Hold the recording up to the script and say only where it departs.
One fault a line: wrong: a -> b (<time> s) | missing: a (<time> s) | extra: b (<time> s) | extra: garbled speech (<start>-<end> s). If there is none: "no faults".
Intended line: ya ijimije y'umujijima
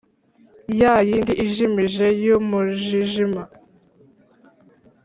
extra: yindi (1.1 s)